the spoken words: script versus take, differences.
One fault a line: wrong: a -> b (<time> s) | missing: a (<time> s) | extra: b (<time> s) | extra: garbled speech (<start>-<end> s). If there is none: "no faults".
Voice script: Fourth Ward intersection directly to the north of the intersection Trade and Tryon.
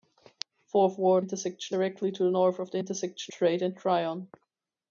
no faults